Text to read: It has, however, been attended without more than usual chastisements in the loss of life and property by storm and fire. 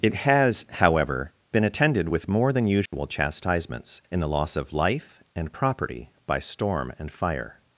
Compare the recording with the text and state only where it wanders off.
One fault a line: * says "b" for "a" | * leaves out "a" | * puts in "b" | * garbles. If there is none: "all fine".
* says "with" for "without"